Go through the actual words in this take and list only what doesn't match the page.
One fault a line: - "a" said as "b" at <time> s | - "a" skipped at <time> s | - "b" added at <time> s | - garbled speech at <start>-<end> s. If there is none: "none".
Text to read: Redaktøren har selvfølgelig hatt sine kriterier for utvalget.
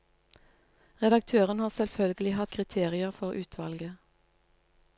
- "sine" skipped at 2.5 s